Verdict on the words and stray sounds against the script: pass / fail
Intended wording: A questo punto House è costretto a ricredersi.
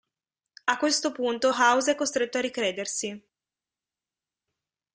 pass